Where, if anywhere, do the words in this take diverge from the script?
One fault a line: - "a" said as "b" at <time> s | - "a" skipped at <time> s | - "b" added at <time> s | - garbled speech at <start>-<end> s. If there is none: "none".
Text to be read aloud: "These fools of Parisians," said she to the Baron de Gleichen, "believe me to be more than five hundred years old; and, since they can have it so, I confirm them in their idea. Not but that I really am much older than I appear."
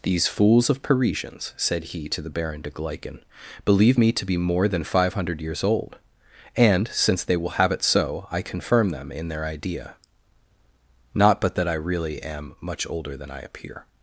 - "she" said as "he" at 1.9 s
- "can" said as "will" at 7.4 s